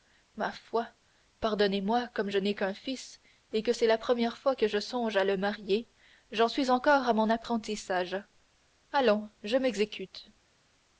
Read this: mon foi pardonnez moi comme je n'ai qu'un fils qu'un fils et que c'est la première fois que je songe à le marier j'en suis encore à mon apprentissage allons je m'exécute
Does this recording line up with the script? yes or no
no